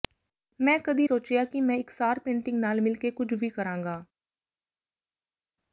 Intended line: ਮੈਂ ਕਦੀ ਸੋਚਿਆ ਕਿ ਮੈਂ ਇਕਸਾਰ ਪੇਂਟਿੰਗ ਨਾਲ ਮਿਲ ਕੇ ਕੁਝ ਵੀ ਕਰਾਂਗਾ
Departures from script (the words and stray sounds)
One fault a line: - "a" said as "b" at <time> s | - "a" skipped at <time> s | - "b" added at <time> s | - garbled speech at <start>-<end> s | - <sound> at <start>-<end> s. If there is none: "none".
none